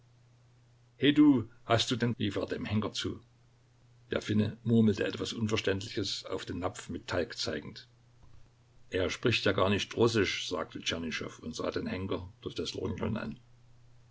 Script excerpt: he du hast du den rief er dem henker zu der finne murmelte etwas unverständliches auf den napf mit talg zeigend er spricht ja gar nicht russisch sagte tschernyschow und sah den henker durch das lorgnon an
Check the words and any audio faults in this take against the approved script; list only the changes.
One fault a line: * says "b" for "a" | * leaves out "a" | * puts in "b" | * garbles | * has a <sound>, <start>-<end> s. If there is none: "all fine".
all fine